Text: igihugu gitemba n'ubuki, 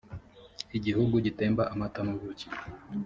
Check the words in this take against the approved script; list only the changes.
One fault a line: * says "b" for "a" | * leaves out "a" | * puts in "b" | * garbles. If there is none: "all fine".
* puts in "amata"